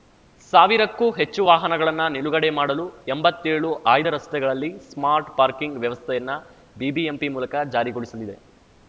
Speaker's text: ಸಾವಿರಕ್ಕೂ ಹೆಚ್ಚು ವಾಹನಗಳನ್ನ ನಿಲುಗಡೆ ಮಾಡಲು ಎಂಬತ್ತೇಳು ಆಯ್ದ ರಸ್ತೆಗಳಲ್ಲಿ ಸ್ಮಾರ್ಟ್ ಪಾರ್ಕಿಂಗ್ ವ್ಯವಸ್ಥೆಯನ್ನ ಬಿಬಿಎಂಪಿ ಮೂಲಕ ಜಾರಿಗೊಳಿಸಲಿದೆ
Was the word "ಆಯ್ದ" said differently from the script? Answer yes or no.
no